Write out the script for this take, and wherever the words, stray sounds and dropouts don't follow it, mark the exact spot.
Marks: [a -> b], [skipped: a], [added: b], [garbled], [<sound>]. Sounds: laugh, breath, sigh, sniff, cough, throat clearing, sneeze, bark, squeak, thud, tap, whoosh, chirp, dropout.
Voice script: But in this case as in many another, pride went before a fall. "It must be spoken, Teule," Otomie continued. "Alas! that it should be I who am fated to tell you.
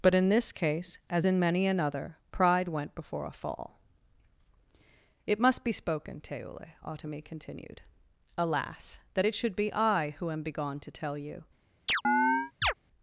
But in this case as in many another, pride went before a fall. "It must be spoken, Teule," Otomie continued. "Alas! that it should be I who am [fated -> begone] to tell you. [chirp]